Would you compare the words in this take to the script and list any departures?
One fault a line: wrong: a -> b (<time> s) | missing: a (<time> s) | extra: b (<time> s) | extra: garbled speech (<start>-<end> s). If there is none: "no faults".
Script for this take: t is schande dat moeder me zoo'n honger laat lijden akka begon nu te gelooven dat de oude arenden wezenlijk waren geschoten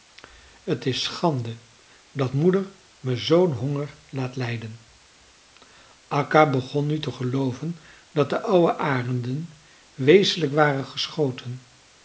no faults